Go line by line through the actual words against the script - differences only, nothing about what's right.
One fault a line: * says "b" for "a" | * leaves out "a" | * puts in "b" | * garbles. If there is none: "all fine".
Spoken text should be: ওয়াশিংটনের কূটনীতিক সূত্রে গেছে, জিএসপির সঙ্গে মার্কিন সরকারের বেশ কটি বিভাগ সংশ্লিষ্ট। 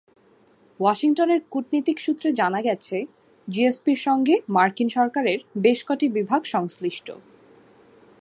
* puts in "জানা"